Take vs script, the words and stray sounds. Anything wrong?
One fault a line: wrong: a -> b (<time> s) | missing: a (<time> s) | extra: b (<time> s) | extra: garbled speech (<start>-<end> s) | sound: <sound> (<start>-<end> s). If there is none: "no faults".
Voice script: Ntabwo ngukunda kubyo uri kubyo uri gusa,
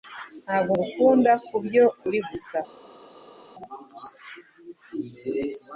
missing: kubyo uri (2.2 s)